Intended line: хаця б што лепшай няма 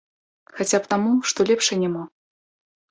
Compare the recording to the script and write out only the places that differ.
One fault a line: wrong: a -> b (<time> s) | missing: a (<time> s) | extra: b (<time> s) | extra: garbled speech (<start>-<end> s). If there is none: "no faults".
extra: таму (0.9 s)